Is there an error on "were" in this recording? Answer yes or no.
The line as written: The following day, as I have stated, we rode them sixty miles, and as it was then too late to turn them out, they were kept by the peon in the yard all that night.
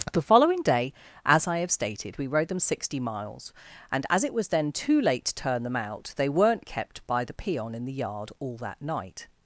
yes